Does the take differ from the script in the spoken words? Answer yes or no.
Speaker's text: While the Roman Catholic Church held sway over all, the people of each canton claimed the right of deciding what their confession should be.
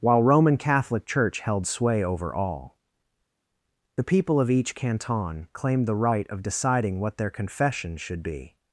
yes